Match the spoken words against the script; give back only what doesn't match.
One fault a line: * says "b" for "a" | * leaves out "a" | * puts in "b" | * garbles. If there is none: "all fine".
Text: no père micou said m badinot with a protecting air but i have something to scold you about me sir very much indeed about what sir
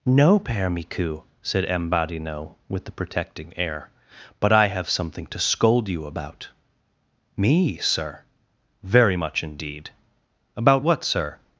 * says "the" for "a"